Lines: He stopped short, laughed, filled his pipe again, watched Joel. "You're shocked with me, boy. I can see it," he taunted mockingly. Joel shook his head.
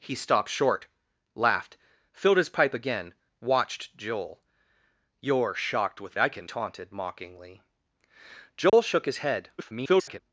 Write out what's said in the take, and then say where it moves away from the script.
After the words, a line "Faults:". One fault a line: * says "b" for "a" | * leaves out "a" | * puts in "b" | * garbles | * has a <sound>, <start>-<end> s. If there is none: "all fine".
He stopped short, laughed, filled his pipe again, watched Joel. "You're shocked with. I can taunted mockingly. Joel shook his head. [garbled]
Faults:
* leaves out "me boy"
* leaves out "see it he"
* has a dropout, 8.7-8.7 s
* garbles